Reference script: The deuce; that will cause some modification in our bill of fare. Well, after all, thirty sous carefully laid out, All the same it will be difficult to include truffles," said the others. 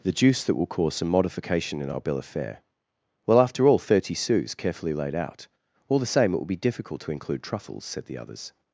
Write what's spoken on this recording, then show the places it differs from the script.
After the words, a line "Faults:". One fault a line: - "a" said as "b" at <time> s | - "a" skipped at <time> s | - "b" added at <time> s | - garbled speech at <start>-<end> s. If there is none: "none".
The juice; that will cause some modification in our bill of fare. Well, after all, thirty sous carefully laid out, All the same it will be difficult to include truffles," said the others.
Faults:
- "deuce" said as "juice" at 0.1 s